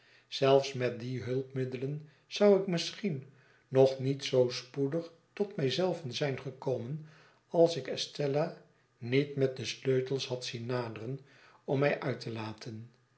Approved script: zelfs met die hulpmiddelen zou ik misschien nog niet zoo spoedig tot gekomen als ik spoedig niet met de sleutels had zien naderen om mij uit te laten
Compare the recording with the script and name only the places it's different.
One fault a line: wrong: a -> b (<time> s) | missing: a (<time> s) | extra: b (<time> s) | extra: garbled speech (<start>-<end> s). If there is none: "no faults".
extra: mij zelven zijn (5.5 s)
wrong: spoedig -> estella (7.9 s)